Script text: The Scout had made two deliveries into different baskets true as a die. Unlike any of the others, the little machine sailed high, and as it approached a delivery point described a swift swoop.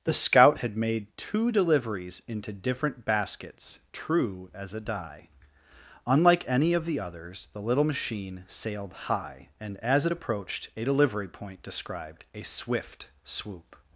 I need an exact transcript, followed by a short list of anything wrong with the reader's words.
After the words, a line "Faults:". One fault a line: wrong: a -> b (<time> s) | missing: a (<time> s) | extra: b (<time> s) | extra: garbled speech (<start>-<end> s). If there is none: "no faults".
The Scout had made two deliveries into different baskets true as a die. Unlike any of the others, the little machine sailed high, and as it approached a delivery point described a swift swoop.
Faults:
no faults